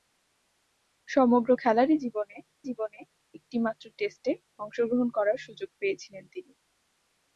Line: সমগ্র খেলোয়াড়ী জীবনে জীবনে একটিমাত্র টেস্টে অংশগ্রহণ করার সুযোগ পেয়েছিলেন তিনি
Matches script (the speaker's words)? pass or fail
pass